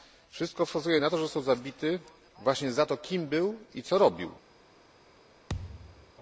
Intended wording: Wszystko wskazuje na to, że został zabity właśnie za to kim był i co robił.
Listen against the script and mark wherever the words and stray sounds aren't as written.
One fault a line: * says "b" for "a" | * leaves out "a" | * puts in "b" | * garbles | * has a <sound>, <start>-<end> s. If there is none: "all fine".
* has a thud, 5.5-6.1 s